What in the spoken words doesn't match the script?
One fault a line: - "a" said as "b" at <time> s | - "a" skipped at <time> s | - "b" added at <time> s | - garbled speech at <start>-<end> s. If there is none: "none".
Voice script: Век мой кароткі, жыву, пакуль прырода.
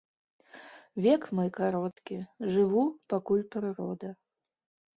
none